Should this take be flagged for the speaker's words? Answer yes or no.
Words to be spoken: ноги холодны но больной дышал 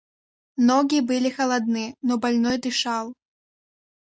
yes